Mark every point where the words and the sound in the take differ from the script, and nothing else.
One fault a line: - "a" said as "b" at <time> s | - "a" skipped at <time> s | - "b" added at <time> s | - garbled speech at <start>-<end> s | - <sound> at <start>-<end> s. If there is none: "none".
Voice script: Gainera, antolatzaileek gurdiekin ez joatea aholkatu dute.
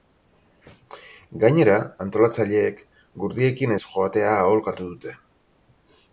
none